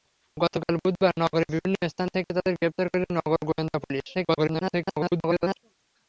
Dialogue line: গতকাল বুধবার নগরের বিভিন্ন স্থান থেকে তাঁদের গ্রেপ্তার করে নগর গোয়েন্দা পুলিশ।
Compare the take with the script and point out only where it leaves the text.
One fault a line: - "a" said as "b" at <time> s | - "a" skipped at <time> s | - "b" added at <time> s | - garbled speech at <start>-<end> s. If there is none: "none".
- garbled speech at 4.1-5.6 s